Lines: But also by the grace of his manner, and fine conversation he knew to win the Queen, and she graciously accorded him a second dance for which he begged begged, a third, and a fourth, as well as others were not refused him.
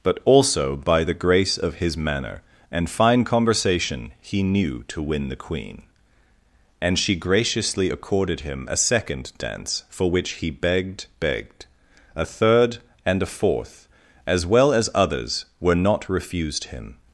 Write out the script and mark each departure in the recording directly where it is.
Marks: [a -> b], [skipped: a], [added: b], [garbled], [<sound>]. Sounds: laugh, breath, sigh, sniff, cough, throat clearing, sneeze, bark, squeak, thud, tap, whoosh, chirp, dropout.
But also by the grace of his manner, and fine conversation he knew to win the Queen, and she graciously accorded him a second dance for which he begged begged, a third, and a fourth, as well as others were not refused him.